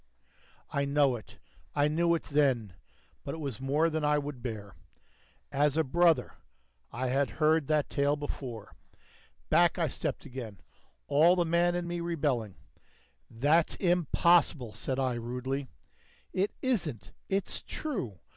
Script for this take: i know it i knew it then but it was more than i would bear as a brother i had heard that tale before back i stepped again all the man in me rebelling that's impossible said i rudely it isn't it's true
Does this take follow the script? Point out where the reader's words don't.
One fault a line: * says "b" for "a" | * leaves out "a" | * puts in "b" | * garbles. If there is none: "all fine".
all fine